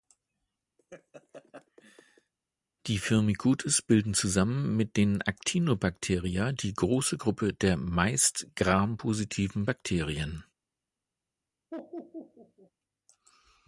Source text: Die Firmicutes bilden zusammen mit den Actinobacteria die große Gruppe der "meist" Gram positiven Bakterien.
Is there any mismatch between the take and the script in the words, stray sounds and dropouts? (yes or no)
yes